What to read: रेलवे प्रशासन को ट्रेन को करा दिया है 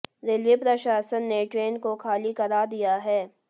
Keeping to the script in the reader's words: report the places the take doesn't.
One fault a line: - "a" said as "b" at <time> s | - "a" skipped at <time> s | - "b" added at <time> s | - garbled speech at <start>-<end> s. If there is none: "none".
- "को" said as "ने" at 1.2 s
- "खाली" added at 2.0 s